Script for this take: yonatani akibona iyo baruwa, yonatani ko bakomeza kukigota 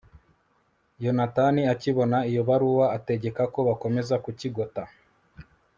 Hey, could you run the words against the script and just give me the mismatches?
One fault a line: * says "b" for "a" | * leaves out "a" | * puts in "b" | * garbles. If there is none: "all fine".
* says "ategeka" for "yonatani"